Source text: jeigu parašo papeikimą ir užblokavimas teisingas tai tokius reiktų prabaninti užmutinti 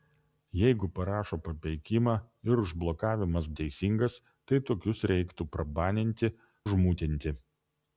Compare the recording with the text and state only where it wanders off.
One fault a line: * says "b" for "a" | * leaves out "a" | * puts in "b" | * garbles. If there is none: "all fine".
all fine